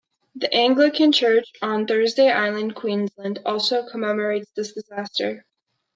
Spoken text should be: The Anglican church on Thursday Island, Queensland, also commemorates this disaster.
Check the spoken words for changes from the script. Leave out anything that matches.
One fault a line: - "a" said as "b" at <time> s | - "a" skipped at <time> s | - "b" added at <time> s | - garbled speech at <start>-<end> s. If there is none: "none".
none